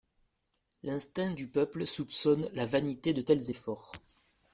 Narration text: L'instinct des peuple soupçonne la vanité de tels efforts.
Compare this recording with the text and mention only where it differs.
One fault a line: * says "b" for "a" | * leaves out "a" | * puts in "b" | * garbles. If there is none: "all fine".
* says "du" for "des"